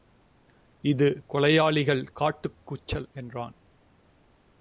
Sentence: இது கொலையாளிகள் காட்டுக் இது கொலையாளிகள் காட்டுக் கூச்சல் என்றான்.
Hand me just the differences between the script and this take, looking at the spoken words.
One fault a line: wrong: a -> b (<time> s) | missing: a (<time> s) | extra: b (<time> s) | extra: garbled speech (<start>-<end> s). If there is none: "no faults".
missing: இது கொலையாளிகள் காட்டுக் (2.6 s)